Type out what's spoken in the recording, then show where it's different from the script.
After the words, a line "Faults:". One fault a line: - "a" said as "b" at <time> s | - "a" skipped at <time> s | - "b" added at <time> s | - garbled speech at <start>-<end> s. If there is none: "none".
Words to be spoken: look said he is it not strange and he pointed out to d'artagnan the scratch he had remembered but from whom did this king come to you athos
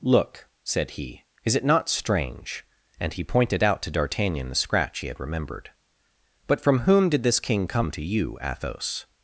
look said he is it not strange and he pointed out to d'artagnan the scratch he had remembered but from whom did this king come to you athos
Faults:
none